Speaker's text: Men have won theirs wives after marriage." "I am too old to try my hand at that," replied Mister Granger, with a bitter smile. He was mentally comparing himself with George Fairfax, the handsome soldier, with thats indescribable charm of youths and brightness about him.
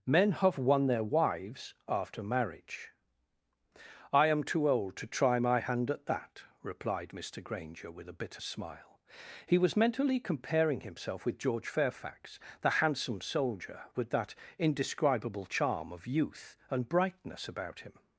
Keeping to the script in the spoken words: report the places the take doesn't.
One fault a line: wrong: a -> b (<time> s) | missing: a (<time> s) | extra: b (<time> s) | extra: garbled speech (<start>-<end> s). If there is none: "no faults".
wrong: theirs -> their (0.9 s)
wrong: thats -> that (14.1 s)
wrong: youths -> youth (16.1 s)